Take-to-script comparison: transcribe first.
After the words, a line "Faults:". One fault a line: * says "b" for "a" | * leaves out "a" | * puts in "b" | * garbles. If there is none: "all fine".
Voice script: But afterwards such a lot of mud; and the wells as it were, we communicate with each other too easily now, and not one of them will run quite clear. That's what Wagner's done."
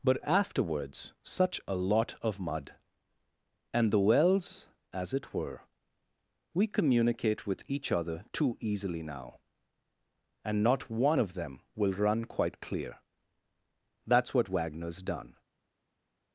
But afterwards such a lot of mud; and the wells as it were, we communicate with each other too easily now, and not one of them will run quite clear. That's what Wagner's done."
Faults:
all fine